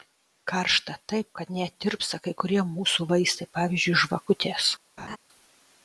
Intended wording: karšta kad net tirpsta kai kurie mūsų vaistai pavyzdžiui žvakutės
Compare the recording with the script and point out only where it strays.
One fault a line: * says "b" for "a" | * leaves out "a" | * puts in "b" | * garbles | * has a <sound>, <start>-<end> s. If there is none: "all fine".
* puts in "taip"
* has a laugh, 5.0-5.2 s